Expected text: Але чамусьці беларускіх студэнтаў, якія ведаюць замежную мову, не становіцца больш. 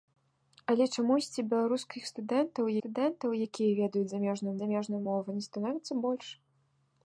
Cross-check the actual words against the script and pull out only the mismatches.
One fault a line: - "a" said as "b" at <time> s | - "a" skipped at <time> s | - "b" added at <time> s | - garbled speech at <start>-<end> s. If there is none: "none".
- "студэнтаў" added at 2.8 s
- "замежную" added at 4.6 s